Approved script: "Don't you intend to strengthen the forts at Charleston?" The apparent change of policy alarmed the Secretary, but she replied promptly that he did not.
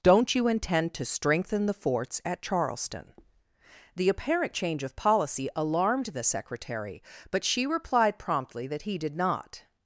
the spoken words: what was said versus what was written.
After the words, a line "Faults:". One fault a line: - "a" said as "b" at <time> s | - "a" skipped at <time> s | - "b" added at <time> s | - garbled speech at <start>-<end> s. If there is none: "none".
"Don't you intend to strengthen the forts at Charleston?" The apparent change of policy alarmed the Secretary, but she replied promptly that he did not.
Faults:
none